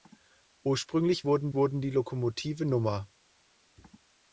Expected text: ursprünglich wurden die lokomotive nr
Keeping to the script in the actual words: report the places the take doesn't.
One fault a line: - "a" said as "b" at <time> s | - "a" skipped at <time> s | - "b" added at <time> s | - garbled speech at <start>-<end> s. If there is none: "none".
- "wurden" added at 1.5 s